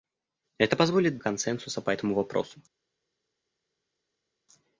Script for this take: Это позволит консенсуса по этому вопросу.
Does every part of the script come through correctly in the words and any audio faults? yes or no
yes